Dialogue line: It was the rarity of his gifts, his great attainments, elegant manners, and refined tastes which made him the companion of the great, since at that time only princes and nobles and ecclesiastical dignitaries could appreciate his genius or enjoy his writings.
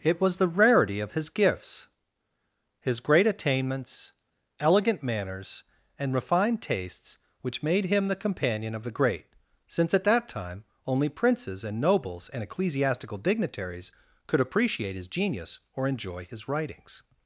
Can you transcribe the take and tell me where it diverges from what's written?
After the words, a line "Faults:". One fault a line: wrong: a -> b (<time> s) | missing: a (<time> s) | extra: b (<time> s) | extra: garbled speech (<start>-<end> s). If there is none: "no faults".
It was the rarity of his gifts, his great attainments, elegant manners, and refined tastes which made him the companion of the great, since at that time only princes and nobles and ecclesiastical dignitaries could appreciate his genius or enjoy his writings.
Faults:
no faults